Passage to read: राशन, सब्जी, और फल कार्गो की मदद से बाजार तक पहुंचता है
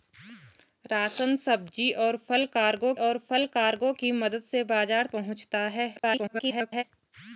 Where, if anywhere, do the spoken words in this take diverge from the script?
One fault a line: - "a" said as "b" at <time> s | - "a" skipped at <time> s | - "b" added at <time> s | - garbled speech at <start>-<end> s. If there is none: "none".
- "और फल कार्गो" added at 3.0 s
- "तक" skipped at 5.1 s
- garbled speech at 6.0-6.8 s